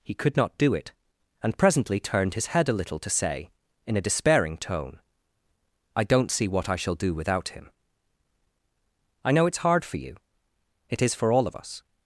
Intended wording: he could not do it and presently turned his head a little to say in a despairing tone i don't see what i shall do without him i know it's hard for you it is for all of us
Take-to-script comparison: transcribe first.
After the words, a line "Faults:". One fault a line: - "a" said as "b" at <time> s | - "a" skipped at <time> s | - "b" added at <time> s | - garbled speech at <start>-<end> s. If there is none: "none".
he could not do it and presently turned his head a little to say in a despairing tone i don't see what i shall do without him i know it's hard for you it is for all of us
Faults:
none